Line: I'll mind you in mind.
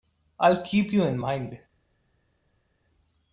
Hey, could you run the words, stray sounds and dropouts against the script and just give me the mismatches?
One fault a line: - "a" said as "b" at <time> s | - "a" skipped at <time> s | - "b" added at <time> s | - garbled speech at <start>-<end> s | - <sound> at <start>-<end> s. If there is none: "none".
- "mind" said as "keep" at 0.6 s